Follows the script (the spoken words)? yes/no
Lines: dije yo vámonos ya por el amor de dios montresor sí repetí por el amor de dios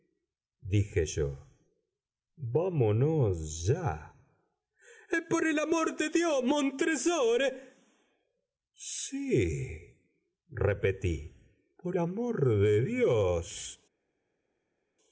no